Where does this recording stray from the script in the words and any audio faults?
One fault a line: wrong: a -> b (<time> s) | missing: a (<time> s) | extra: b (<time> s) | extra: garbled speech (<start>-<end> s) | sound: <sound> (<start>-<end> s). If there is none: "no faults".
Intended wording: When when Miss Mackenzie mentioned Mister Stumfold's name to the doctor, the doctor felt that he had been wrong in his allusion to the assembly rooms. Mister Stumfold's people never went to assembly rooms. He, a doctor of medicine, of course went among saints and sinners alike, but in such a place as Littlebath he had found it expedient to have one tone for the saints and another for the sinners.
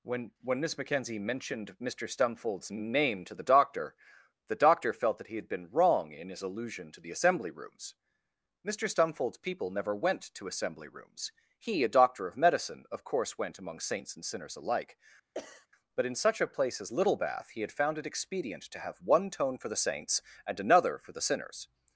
sound: sneeze (15.3-15.7 s)